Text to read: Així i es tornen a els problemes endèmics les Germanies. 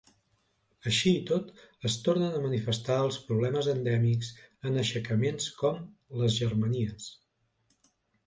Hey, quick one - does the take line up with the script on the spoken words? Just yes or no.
no